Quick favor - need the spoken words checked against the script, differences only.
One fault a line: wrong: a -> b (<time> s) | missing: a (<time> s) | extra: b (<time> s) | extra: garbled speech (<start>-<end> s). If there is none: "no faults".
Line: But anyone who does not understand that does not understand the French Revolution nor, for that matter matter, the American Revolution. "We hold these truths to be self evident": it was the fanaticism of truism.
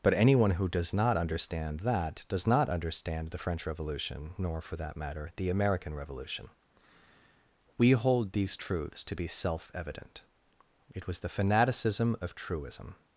missing: matter (5.3 s)